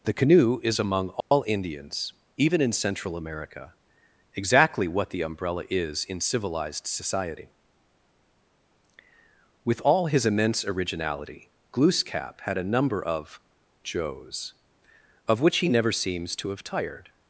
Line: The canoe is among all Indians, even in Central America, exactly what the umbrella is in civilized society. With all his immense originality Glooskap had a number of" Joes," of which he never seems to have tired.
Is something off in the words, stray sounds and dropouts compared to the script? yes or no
yes